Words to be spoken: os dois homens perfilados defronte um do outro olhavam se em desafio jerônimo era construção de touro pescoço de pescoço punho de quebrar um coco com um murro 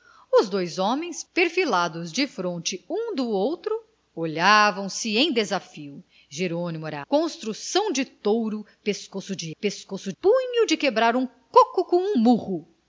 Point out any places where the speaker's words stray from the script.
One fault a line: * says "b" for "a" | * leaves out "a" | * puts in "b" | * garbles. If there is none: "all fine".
all fine